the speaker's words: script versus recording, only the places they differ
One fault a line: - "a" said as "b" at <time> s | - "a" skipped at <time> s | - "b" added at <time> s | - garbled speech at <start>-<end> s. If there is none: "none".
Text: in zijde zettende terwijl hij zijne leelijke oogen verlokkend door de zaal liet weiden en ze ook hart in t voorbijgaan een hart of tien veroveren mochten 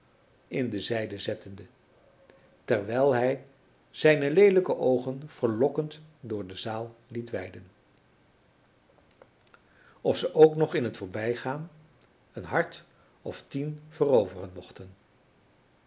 - "de" added at 0.7 s
- "en" said as "of" at 10.0 s
- "hart" said as "nog" at 10.6 s